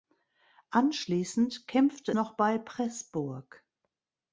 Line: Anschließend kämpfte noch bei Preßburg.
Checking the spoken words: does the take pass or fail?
pass